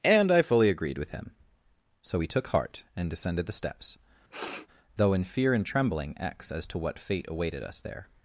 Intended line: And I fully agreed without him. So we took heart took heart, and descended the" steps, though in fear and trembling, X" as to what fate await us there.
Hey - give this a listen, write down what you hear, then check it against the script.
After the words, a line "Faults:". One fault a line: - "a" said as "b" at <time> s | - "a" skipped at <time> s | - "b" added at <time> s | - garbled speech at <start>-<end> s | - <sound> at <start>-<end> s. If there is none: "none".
And I fully agreed with him. So we took heart, and descended the" steps, though in fear and trembling, X" as to what fate awaited us there.
Faults:
- "without" said as "with" at 1.0 s
- "took heart" skipped at 2.8 s
- sniff at 4.3-4.7 s
- "await" said as "awaited" at 7.3 s